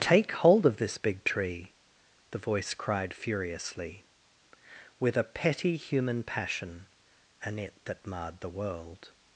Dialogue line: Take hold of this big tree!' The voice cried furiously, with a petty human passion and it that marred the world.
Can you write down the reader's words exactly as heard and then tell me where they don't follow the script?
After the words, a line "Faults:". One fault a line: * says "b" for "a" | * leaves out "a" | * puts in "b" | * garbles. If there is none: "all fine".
Take hold of this big tree!' The voice cried furiously, with a petty human passion and it that marred the world.
Faults:
all fine